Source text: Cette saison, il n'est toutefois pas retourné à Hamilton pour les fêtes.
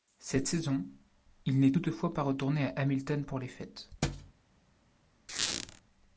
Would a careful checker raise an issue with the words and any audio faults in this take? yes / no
yes